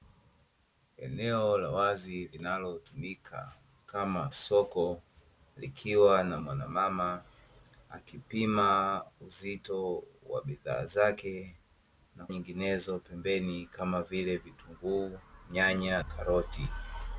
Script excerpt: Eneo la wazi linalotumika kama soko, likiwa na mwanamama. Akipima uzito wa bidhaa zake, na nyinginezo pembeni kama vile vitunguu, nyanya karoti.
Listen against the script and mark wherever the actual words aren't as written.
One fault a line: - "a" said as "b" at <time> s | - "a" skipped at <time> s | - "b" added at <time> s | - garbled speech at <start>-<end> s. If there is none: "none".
none